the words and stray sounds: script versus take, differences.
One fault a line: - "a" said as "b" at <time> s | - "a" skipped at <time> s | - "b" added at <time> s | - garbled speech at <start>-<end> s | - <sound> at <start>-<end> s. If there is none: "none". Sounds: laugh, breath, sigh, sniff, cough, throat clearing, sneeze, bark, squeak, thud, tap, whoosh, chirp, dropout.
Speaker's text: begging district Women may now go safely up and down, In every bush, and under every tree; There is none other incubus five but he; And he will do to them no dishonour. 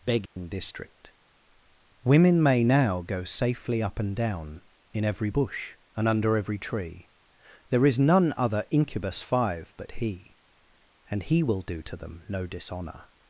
- dropout at 0.3-0.4 s